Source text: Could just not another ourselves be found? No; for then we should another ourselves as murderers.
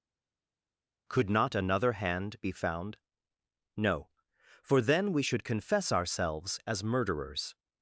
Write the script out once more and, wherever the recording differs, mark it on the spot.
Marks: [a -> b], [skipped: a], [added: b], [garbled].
Could [skipped: just] not another [ourselves -> hand] be found? No; for then we should [another -> confess] ourselves as murderers.